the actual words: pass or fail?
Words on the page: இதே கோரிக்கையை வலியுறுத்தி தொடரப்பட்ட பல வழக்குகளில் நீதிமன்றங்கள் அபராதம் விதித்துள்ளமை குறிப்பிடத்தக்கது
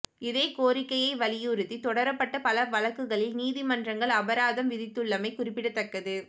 pass